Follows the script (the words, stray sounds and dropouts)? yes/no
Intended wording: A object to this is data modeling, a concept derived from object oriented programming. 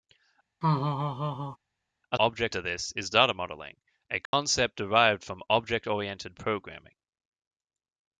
no